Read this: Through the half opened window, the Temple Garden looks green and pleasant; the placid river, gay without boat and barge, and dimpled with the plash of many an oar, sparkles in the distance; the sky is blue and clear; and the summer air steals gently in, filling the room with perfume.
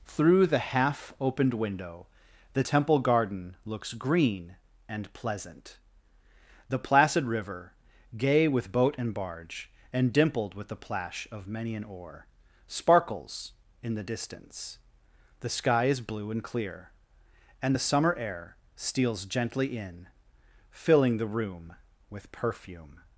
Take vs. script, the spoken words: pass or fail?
fail